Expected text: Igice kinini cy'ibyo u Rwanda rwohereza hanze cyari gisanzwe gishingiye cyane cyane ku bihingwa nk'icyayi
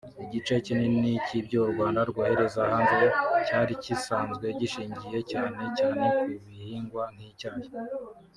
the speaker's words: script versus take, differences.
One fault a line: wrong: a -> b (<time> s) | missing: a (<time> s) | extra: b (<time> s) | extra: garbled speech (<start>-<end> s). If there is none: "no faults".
no faults